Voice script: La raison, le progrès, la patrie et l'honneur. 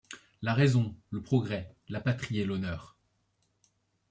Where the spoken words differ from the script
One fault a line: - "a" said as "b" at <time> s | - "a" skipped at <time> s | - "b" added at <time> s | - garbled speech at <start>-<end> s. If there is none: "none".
none